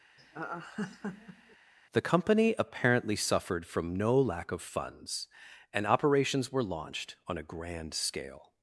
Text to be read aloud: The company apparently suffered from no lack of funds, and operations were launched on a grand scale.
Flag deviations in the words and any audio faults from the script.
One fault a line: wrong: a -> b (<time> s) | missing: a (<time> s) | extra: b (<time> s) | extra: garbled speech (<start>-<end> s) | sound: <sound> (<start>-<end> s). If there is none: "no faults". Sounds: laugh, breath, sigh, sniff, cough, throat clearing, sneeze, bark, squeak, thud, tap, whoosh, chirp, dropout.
sound: laugh (0.2-1.6 s)